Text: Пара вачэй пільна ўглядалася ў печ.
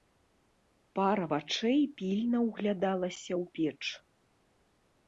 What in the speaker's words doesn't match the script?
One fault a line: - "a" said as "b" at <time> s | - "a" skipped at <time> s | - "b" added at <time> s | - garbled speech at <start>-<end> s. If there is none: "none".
none